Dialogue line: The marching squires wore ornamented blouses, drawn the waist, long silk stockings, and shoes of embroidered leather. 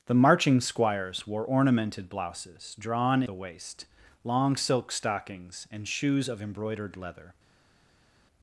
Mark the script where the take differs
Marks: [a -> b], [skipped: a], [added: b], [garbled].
The marching squires wore ornamented blouses, drawn the waist, long silk stockings, and shoes of embroidered leather.